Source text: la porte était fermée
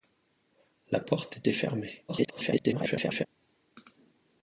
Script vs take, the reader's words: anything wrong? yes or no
yes